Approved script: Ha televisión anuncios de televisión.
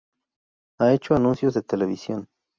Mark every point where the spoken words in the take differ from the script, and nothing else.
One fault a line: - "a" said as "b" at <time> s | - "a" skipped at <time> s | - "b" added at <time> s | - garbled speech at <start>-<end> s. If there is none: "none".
- "televisión" said as "hecho" at 0.9 s